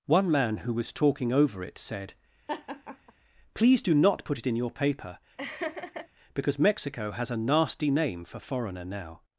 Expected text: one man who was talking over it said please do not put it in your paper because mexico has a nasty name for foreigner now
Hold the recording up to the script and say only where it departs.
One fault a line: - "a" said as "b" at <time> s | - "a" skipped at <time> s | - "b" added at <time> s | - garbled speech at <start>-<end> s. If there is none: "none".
none